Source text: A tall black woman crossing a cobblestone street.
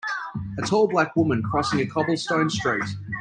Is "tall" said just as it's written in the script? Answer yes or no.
yes